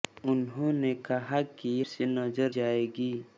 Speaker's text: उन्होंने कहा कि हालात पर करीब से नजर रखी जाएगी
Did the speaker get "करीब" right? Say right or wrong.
wrong